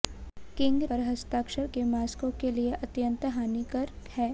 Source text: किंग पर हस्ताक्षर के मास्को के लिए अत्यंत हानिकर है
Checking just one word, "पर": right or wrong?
right